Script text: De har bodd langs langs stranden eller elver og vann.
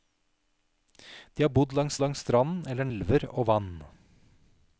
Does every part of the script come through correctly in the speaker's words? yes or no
yes